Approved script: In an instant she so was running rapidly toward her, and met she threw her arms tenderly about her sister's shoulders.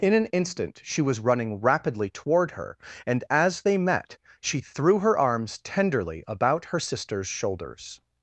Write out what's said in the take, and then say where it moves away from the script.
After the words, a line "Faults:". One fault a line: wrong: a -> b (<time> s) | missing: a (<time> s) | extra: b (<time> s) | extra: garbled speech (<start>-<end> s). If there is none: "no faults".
In an instant she was running rapidly toward her, and as they met she threw her arms tenderly about her sister's shoulders.
Faults:
missing: so (1.0 s)
extra: as they (3.3 s)